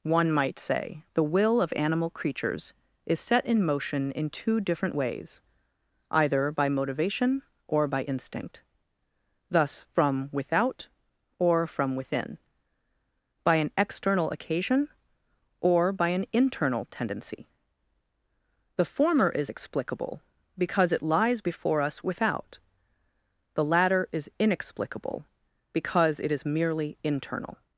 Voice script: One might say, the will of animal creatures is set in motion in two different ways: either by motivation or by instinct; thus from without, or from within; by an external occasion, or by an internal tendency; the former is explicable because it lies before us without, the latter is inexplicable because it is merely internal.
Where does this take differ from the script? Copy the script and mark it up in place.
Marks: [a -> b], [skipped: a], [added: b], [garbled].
One might say, the will of animal creatures is set in motion in two different ways: either by motivation or by instinct; thus from without, or from within; by an external occasion, or by an internal tendency; the former is explicable because it lies before us without, the latter is inexplicable because it is merely internal.